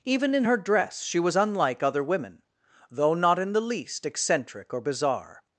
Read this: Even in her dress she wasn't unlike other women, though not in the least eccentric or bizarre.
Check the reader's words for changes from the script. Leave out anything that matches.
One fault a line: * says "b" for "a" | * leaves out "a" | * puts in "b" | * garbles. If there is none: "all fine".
* says "was" for "wasn't"